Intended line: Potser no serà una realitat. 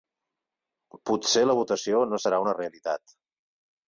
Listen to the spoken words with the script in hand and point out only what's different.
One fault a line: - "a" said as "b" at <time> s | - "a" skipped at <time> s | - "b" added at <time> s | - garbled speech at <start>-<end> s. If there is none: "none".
- "la votació" added at 1.4 s